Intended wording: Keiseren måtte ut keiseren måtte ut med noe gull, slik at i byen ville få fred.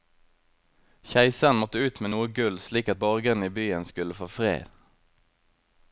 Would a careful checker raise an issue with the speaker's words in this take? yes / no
yes